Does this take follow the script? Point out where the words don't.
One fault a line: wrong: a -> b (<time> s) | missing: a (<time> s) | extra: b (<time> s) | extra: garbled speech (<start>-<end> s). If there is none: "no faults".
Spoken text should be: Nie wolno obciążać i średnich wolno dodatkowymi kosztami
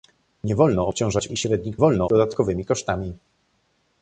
no faults